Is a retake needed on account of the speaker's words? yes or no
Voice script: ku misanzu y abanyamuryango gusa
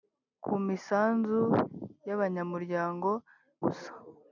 no